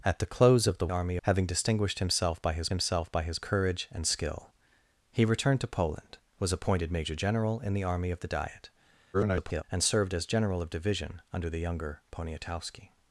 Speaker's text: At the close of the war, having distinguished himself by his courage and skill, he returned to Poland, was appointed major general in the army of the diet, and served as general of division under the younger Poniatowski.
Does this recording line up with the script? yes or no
no